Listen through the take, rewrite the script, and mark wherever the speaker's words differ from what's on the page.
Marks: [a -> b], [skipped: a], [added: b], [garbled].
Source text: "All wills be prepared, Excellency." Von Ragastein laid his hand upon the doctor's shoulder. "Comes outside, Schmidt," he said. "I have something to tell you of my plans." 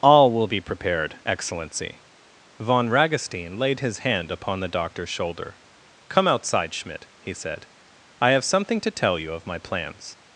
"All [wills -> will] be prepared, Excellency." Von Ragastein laid his hand upon the doctor's shoulder. ["Comes -> Come] outside, Schmidt," he said. "I have something to tell you of my plans."